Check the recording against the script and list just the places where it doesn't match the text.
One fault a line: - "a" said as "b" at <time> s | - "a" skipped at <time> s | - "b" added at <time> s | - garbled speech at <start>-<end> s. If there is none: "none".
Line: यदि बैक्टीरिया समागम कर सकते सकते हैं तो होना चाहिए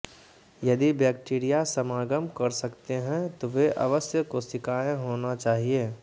- "सकते" skipped at 2.9 s
- "वे अवश्य कोशिकाएं" added at 3.5 s